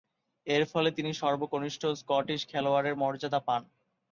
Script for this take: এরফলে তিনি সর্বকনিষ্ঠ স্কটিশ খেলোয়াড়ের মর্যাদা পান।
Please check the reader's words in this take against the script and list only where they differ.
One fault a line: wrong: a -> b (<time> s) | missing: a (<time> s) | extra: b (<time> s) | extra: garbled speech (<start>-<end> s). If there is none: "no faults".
no faults